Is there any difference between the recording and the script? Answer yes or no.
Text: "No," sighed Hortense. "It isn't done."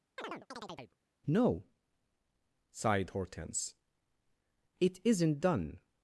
no